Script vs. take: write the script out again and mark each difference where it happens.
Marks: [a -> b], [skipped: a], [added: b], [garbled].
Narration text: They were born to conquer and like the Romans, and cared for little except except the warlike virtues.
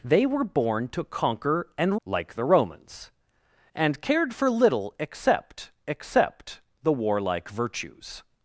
They were born to conquer and like the Romans, and cared for little except except the warlike virtues.